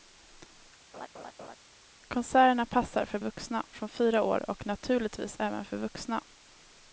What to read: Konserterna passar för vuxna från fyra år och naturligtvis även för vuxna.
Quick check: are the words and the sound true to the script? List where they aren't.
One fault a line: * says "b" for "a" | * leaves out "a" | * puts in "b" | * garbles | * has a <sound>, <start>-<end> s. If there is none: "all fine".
* has a laugh, 0.9-1.6 s